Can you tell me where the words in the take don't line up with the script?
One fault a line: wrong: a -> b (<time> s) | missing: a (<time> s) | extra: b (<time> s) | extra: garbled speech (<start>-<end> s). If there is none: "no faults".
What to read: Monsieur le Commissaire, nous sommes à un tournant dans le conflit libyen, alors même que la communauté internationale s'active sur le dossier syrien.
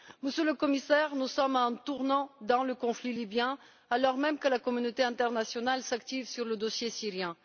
no faults